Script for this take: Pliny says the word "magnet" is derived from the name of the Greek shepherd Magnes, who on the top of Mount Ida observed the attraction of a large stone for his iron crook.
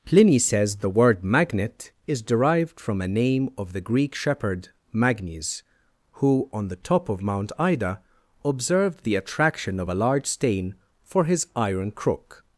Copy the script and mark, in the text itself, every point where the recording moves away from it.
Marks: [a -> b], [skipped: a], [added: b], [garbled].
Pliny says the word "magnet" is derived from [the -> a] name of the Greek shepherd Magnes, who on the top of Mount Ida observed the attraction of a large [stone -> stain] for his iron crook.